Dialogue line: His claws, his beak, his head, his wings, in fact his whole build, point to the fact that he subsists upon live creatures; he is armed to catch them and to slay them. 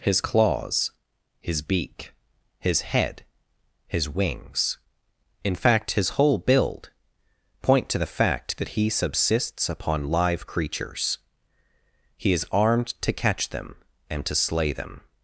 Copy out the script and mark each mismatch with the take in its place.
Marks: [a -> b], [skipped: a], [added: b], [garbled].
His claws, his beak, his head, his wings, in fact his whole build, point to the fact that he subsists upon live creatures; he is armed to catch them and to slay them.